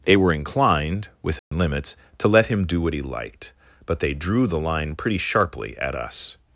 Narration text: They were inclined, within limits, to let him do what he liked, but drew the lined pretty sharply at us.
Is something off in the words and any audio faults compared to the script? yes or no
yes